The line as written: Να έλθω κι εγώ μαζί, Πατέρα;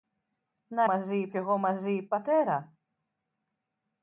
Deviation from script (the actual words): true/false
true